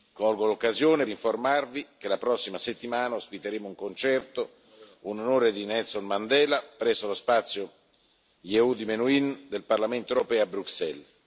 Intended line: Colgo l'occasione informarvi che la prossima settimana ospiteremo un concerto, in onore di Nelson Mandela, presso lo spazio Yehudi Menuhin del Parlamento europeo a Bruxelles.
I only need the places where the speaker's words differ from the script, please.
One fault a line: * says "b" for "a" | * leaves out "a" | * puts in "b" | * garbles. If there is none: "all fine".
all fine